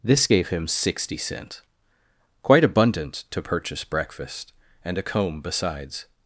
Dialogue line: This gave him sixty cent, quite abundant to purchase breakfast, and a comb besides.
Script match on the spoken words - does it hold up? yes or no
yes